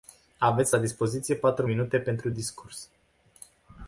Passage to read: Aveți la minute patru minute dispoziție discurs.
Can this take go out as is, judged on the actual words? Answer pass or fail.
fail